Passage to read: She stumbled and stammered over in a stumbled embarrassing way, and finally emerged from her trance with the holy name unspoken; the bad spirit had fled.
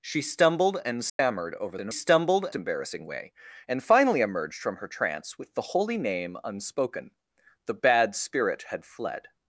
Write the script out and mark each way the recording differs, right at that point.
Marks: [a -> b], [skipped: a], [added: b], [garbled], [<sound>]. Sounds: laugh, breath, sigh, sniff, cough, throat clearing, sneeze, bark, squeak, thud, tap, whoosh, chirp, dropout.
She stumbled and stammered [dropout] over in a stumbled embarrassing way, and finally emerged from her trance with the holy name unspoken; the bad spirit had fled.